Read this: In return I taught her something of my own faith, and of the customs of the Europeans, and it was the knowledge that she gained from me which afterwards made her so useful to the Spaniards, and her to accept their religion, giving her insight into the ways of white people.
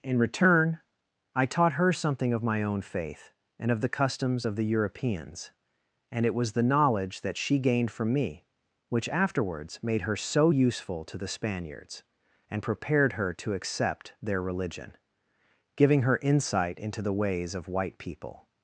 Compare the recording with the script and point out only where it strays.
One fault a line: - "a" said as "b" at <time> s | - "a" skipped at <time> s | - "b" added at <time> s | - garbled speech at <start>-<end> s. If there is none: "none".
- "prepared" added at 12.6 s